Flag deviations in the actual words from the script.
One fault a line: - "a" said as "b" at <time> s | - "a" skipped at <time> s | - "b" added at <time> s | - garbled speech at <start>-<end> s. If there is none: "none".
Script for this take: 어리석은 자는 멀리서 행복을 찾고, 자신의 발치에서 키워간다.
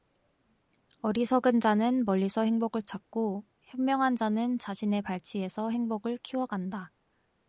- "현명한 자는" added at 3.6 s
- "행복을" added at 5.7 s